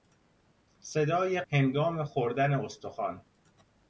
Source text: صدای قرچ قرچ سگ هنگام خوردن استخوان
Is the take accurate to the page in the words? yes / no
no